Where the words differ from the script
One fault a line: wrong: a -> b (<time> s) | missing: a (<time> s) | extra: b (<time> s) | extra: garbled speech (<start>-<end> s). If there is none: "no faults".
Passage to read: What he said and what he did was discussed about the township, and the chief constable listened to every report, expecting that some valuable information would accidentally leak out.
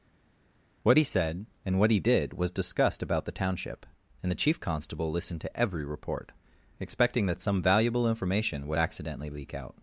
no faults